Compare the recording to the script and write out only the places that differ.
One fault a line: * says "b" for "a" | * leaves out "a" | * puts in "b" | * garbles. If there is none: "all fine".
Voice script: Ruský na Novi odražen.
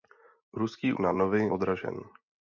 all fine